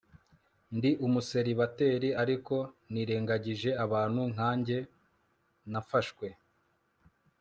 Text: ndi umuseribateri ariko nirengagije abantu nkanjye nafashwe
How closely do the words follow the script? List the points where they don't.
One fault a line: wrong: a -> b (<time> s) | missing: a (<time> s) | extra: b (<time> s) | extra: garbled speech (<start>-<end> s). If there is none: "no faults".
no faults